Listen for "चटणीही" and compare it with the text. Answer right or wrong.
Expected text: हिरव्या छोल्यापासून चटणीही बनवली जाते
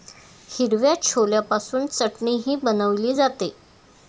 right